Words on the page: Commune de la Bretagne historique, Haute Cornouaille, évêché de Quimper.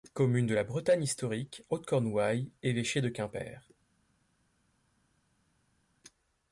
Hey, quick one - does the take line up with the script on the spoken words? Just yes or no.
yes